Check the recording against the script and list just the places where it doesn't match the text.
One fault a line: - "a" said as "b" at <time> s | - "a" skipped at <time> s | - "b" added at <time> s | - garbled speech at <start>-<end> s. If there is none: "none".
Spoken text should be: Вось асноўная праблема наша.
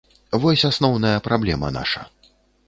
none